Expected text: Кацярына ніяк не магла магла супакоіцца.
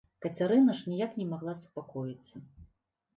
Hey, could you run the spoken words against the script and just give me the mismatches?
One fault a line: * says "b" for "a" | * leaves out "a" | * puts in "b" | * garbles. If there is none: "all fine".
* puts in "ж"
* leaves out "магла"